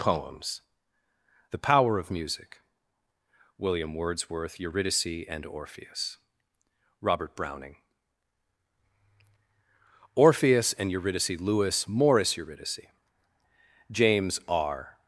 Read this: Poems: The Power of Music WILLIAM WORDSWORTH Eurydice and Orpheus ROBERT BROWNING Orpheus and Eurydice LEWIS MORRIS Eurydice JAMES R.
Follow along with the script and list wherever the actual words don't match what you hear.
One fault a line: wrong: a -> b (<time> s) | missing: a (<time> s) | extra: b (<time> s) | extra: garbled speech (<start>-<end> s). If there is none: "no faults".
no faults